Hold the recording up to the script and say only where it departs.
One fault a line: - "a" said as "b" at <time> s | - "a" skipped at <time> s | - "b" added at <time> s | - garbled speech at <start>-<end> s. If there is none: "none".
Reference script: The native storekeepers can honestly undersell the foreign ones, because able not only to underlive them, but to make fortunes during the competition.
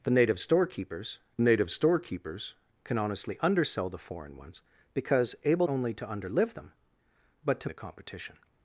- "native storekeepers" added at 1.4 s
- "not" skipped at 5.7 s
- "make fortunes during" skipped at 7.7 s